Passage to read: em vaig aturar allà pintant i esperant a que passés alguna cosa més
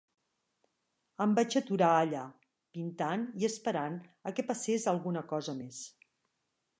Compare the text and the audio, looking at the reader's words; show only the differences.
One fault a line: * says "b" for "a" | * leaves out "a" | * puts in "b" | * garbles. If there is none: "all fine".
all fine